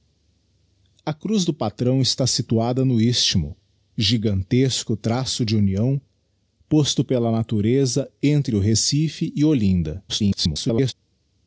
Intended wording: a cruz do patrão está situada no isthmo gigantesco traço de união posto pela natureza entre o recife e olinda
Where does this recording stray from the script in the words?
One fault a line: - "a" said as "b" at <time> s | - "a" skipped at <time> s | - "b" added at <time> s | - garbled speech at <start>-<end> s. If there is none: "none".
- garbled speech at 10.1-10.9 s